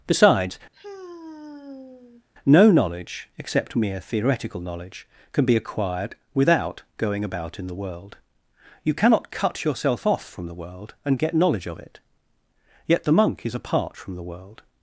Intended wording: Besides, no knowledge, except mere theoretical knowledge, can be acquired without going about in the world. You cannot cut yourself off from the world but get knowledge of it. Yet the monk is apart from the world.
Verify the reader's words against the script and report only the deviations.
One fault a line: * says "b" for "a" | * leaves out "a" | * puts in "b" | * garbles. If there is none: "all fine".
* says "and" for "but"